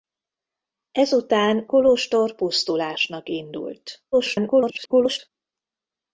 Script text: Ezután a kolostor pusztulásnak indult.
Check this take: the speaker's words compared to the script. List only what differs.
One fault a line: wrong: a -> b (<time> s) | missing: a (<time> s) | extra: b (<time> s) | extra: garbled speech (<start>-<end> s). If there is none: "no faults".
missing: a (1.6 s)
extra: garbled speech (4.1-5.3 s)